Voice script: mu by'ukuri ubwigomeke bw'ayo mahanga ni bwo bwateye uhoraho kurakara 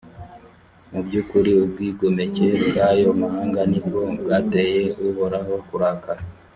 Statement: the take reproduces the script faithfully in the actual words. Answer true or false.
true